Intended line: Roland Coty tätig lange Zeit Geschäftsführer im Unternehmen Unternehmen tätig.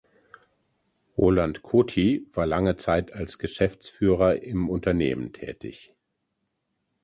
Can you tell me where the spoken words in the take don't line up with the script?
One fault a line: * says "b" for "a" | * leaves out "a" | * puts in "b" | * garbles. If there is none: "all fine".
* says "war" for "tätig"
* puts in "als"
* leaves out "Unternehmen"